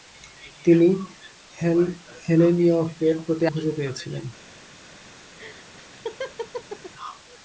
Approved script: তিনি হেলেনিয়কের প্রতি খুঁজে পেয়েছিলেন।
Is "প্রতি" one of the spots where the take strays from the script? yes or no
no